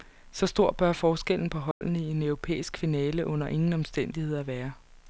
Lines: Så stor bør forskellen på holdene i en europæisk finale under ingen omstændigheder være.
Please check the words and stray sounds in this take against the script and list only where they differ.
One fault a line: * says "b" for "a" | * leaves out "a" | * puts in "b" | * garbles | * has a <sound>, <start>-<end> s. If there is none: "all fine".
* has a dropout, 1.7-1.8 s